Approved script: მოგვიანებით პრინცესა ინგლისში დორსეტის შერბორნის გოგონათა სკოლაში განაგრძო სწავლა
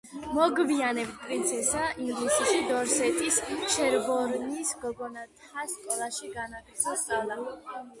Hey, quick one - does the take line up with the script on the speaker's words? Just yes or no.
yes